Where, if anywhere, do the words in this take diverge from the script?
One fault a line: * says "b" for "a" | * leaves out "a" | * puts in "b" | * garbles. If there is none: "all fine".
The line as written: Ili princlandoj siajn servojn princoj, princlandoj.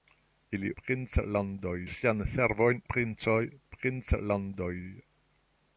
all fine